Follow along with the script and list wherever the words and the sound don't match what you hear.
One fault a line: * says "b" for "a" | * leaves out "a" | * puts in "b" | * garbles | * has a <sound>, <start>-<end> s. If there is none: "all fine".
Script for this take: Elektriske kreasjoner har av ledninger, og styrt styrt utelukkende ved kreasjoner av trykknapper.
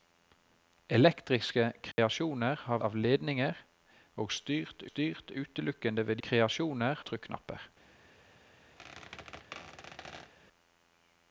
* has a dropout, 1.9-2.0 s
* has a squeak, 8.8-10.3 s